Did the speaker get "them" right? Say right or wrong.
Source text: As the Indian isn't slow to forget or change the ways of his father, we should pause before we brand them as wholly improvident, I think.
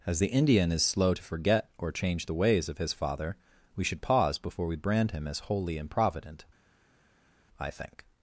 wrong